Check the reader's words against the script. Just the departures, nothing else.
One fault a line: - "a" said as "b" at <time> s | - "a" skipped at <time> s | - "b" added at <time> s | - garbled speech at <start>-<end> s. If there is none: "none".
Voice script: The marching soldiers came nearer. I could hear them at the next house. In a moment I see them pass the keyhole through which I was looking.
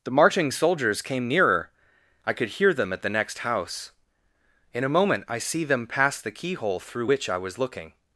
none